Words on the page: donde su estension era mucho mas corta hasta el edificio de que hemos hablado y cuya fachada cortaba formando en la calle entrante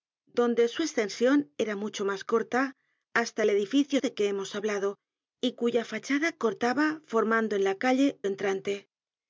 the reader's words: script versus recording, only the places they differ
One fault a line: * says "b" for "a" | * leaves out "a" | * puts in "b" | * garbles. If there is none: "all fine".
all fine